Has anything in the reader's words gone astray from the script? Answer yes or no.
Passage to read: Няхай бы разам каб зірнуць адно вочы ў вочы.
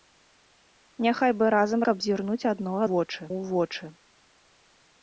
no